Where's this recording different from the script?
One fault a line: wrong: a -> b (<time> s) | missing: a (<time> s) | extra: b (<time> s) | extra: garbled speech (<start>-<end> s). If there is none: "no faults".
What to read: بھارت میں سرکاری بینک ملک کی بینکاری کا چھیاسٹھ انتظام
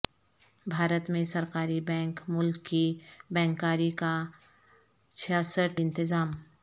no faults